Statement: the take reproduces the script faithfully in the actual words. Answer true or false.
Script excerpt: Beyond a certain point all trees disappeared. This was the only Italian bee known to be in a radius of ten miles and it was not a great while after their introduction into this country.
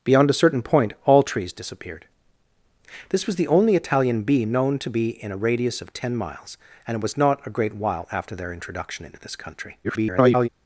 false